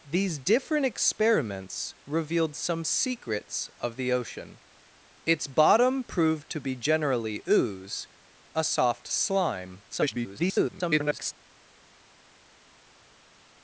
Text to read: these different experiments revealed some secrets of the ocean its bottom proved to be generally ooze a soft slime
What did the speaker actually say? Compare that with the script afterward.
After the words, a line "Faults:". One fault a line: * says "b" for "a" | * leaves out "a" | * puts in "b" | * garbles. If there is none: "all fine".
these different experiments revealed some secrets of the ocean its bottom proved to be generally ooze a soft slime [garbled]
Faults:
* garbles